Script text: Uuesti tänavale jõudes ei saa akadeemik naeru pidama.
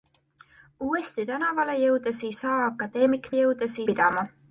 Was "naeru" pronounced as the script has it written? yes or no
no